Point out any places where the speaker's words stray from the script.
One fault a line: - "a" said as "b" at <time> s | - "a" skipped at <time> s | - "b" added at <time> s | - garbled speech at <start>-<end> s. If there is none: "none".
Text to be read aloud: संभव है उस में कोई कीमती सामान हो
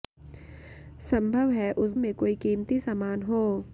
none